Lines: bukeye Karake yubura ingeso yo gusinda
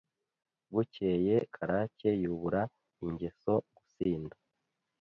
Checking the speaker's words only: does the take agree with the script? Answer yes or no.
no